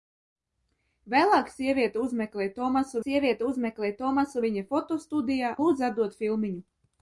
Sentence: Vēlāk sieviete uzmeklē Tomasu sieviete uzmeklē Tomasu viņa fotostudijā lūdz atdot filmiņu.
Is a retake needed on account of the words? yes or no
no